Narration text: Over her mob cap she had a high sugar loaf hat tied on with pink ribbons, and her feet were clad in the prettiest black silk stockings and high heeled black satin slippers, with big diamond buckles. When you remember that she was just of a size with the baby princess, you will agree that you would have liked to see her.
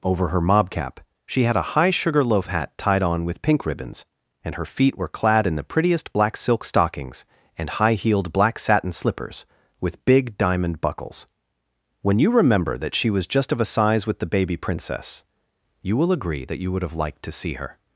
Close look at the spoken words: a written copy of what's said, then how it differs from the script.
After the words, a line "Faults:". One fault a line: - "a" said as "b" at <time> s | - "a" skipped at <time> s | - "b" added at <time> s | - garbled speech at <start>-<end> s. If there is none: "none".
Over her mob cap she had a high sugar loaf hat tied on with pink ribbons, and her feet were clad in the prettiest black silk stockings and high heeled black satin slippers, with big diamond buckles. When you remember that she was just of a size with the baby princess, you will agree that you would have liked to see her.
Faults:
none